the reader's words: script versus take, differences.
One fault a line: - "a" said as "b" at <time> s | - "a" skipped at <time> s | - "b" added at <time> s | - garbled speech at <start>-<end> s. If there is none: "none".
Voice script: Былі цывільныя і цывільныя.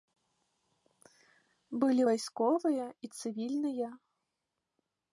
- "цывільныя" said as "вайсковыя" at 2.1 s